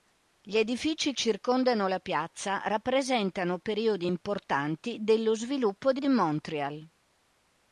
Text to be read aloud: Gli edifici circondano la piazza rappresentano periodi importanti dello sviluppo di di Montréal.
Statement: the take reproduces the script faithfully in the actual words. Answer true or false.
true